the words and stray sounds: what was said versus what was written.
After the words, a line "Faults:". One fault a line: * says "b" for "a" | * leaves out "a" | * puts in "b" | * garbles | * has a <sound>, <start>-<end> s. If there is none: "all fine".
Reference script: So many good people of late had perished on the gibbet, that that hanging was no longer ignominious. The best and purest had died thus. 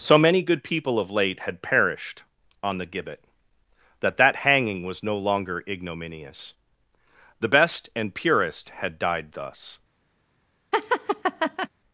So many good people of late had perished on the gibbet, that that hanging was no longer ignominious. The best and purest had died thus.
Faults:
* has a laugh, 10.7-11.7 s